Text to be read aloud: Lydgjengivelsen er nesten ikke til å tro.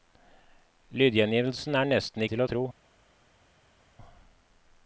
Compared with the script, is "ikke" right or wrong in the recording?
wrong